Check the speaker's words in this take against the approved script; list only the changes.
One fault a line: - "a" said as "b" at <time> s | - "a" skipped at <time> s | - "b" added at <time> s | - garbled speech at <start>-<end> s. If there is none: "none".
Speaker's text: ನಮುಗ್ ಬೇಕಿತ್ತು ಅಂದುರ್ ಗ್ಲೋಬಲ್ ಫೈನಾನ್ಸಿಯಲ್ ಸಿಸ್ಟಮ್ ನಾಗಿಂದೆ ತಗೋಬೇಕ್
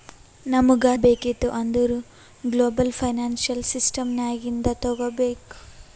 none